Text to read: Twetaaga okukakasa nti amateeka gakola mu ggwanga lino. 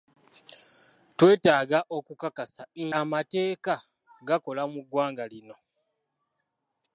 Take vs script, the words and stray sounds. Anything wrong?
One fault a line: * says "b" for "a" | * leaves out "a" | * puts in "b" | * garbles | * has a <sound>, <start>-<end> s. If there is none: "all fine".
* leaves out "nti"